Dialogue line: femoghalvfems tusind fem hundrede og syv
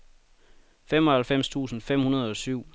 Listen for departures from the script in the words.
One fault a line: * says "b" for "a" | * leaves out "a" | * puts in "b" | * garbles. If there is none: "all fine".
all fine